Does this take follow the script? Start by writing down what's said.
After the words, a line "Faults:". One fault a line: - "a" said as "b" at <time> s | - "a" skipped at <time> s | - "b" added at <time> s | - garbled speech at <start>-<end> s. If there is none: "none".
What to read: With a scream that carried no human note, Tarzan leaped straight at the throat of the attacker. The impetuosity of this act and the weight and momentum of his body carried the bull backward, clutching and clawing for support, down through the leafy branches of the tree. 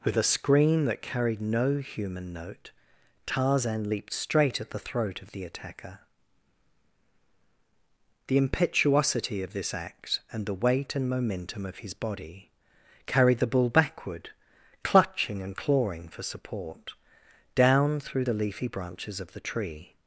With a scream that carried no human note, Tarzan leaped straight at the throat of the attacker. The impetuosity of this act and the weight and momentum of his body carried the bull backward, clutching and clawing for support, down through the leafy branches of the tree.
Faults:
none